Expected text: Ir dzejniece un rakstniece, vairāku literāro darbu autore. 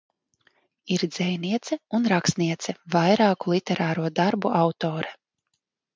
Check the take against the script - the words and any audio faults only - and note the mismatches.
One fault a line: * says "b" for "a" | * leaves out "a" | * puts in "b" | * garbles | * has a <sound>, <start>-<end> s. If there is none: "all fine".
all fine